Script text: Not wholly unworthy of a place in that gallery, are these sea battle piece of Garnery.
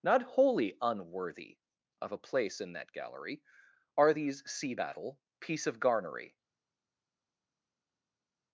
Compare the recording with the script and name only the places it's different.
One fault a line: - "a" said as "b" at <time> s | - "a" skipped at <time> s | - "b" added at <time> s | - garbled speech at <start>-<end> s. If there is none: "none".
none